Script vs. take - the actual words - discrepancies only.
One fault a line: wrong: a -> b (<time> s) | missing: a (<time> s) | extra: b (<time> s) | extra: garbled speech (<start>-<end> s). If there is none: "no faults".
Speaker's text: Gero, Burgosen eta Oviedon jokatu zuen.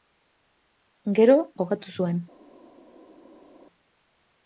missing: Burgosen eta Oviedon (1.4 s)